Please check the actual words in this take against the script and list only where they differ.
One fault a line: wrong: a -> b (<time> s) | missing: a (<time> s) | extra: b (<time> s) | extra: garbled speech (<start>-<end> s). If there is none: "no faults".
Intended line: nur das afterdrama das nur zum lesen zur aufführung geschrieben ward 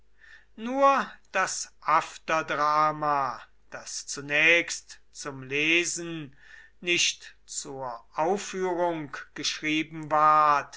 wrong: nur -> zunächst (4.1 s)
extra: nicht (6.8 s)